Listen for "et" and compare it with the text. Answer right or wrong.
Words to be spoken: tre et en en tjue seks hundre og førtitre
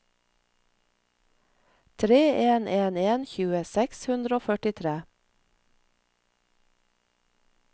wrong